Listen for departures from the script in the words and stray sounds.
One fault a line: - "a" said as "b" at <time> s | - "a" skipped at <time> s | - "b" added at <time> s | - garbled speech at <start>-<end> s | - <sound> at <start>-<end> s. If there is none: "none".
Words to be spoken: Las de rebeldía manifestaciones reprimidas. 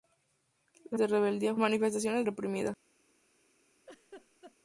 - laugh at 3.9-4.6 s